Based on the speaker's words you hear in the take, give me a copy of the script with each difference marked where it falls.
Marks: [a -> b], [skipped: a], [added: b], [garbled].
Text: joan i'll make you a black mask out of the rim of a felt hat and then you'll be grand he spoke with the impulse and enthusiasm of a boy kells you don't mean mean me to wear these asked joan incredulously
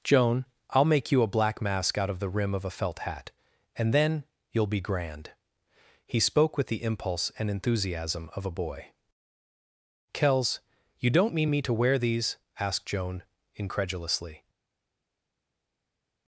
joan i'll make you a black mask out of the rim of a felt hat and then you'll be grand he spoke with the impulse and enthusiasm of a boy kells you don't mean [skipped: mean] me to wear these asked joan incredulously